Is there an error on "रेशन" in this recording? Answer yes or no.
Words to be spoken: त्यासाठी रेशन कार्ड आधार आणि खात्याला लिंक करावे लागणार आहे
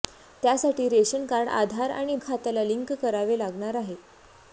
no